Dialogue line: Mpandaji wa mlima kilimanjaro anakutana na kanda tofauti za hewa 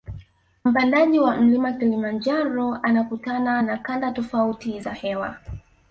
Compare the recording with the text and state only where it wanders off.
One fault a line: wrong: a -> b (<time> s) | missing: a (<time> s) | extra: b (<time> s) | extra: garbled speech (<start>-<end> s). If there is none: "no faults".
no faults